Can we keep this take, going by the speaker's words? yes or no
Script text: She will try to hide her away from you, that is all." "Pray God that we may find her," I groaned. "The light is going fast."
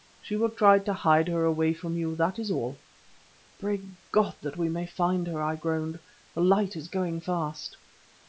yes